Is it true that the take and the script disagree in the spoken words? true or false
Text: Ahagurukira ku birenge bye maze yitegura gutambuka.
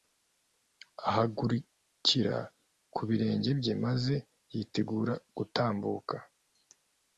false